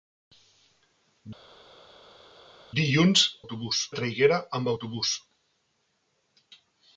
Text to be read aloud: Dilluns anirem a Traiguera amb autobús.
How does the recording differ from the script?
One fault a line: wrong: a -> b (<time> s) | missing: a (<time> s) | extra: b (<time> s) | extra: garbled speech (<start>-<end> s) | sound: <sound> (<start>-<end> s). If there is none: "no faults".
wrong: anirem -> autobús (3.4 s)